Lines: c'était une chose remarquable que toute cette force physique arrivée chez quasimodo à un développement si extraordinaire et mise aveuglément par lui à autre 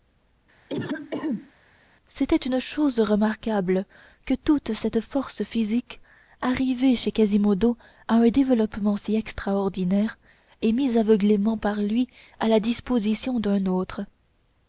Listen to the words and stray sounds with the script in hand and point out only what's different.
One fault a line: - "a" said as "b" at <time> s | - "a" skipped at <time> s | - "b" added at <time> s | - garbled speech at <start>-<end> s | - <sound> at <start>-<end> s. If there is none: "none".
- throat clearing at 0.7-1.5 s
- "la disposition d'un" added at 12.5 s